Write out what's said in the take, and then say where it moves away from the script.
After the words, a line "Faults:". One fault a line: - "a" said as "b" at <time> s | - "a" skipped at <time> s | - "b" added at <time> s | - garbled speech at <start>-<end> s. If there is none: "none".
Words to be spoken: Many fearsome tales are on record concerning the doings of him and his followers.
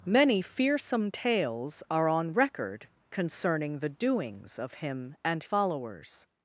Many fearsome tales are on record concerning the doings of him and followers.
Faults:
- "his" skipped at 5.4 s